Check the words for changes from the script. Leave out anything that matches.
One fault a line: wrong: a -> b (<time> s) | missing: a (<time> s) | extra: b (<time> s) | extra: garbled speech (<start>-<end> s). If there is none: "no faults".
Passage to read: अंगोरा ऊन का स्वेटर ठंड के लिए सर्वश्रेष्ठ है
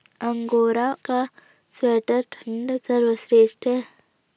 missing: ऊन (0.8 s)
missing: के लिए (2.8 s)